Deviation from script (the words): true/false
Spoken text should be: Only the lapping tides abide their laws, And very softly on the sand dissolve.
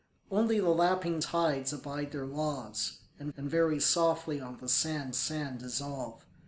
true